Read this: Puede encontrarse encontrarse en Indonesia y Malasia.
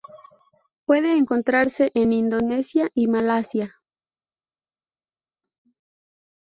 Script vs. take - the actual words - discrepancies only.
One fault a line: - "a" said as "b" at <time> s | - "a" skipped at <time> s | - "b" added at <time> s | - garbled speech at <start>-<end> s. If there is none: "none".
- "encontrarse" skipped at 1.9 s